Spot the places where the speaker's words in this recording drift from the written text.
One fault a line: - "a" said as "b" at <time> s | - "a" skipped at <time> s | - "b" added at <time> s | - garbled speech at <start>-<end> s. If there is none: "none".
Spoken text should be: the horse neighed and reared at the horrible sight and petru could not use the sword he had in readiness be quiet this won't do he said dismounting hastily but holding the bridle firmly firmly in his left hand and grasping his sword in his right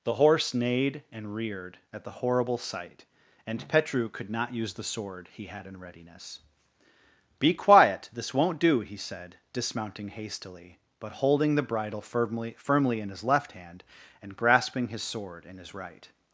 none